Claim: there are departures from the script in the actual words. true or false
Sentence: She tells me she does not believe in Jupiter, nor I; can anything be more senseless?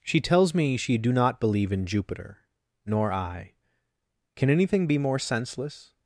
true